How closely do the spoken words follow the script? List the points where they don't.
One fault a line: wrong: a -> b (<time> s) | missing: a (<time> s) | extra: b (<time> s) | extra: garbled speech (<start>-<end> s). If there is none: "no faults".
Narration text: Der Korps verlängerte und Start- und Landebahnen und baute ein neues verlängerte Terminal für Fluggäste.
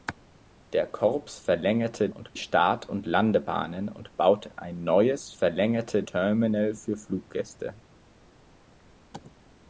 no faults